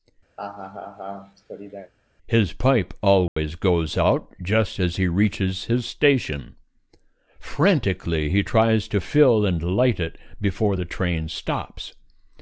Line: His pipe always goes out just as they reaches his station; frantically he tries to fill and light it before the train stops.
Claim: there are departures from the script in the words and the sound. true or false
true